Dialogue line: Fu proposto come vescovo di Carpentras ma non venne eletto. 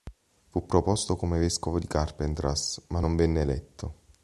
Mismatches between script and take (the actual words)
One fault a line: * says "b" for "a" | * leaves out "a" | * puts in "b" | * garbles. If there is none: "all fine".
all fine